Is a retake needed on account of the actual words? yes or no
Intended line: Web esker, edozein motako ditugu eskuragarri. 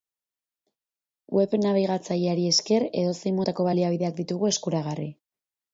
yes